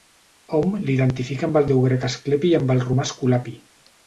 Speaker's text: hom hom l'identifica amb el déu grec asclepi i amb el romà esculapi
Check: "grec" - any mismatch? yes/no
no